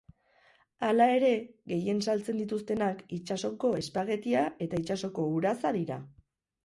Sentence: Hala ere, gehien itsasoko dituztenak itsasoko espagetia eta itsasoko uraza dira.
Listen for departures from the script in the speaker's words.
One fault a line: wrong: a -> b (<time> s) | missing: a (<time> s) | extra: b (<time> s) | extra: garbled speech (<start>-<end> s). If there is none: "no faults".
wrong: itsasoko -> saltzen (2.1 s)